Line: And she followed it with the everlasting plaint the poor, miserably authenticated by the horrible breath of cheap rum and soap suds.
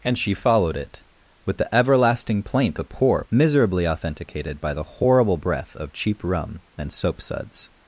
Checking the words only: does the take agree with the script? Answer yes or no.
yes